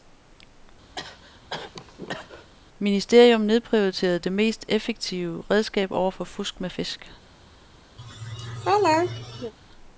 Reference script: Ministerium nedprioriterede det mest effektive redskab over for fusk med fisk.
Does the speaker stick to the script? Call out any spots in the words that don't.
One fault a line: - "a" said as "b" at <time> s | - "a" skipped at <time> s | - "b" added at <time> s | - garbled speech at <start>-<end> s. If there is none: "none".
none